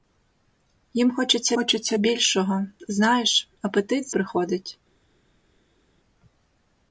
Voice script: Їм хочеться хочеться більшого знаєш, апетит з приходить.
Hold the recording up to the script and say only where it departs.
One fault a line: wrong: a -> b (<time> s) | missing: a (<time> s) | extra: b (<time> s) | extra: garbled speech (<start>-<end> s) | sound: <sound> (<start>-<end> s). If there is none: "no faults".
no faults